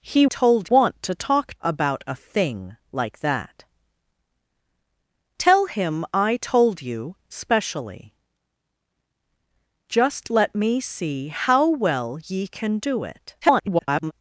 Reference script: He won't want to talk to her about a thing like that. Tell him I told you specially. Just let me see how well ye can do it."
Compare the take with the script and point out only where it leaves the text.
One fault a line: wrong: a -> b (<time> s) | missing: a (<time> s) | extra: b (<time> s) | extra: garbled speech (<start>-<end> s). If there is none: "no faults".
wrong: won't -> told (0.2 s)
missing: to her (1.5 s)
extra: garbled speech (13.4-14.1 s)